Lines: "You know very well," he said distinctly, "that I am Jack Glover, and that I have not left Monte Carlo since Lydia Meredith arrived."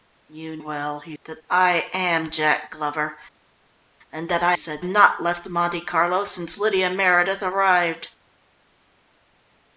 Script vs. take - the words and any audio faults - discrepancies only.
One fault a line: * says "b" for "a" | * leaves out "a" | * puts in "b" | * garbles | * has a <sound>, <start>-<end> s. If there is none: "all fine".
* leaves out "know very"
* leaves out "said distinctly"
* says "said" for "have"